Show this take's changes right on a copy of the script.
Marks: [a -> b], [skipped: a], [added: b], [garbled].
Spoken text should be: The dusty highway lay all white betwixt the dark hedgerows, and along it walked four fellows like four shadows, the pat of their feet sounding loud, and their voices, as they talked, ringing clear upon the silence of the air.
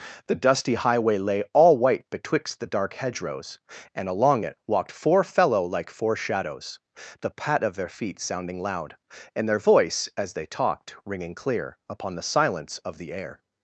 The dusty highway lay all white betwixt the dark hedgerows, and along it walked four [fellows -> fellow] like four shadows, the pat of their feet sounding loud, and their [voices, -> voice] as they talked, ringing clear upon the silence of the air.